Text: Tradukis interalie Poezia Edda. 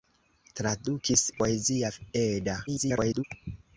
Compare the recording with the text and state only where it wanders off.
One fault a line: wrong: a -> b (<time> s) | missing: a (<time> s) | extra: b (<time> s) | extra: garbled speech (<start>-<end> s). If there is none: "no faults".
missing: interalie (1.2 s)
extra: garbled speech (2.7-3.2 s)